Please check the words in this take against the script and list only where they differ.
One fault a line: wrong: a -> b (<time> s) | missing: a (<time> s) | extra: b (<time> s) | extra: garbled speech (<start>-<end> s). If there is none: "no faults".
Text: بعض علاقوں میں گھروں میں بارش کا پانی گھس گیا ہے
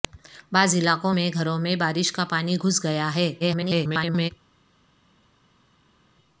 extra: garbled speech (3.4-4.3 s)